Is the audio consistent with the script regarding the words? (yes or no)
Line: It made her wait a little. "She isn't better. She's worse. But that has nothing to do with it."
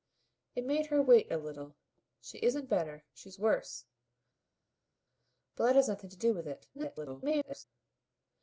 no